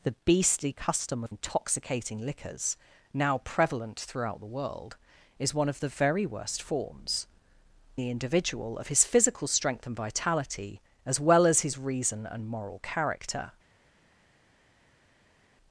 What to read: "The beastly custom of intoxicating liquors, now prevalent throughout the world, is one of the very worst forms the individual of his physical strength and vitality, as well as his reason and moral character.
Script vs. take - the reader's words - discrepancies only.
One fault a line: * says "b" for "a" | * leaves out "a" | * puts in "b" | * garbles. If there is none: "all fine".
all fine